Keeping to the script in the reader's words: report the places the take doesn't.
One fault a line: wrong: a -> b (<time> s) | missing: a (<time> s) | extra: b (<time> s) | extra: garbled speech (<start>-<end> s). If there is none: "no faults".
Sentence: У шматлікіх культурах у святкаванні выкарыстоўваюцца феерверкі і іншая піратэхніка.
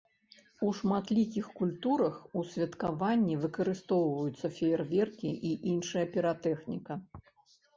no faults